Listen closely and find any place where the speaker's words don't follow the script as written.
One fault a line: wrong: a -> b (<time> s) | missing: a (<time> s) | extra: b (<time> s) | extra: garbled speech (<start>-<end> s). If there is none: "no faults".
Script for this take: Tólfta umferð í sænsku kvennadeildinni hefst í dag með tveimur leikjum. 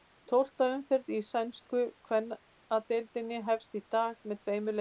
no faults